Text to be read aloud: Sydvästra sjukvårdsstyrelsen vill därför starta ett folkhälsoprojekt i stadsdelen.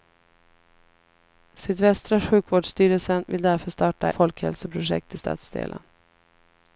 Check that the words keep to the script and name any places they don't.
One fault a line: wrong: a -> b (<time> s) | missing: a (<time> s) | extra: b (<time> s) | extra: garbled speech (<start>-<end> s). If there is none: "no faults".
missing: ett (4.1 s)